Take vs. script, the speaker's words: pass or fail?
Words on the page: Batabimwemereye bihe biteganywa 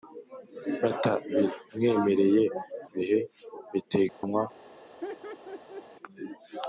pass